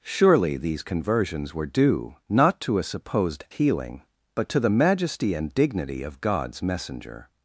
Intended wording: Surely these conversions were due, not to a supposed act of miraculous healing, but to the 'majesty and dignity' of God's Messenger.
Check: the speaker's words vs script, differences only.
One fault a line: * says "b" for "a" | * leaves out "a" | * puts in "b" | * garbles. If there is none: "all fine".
* leaves out "act of miraculous"